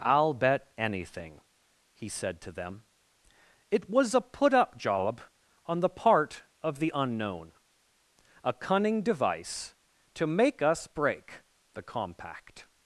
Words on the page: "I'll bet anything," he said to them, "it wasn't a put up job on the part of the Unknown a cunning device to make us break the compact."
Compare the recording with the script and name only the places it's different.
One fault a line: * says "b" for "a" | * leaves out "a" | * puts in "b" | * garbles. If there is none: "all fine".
* says "was" for "wasn't"